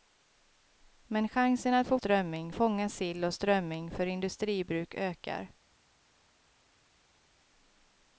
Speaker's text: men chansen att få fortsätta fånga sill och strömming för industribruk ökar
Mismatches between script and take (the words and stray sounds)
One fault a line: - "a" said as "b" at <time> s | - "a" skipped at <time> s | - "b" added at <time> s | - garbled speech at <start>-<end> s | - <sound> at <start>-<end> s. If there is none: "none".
- "fortsätta" said as "strömming" at 2.0 s